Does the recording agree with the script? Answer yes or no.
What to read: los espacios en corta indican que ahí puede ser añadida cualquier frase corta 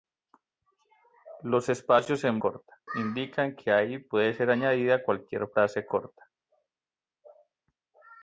yes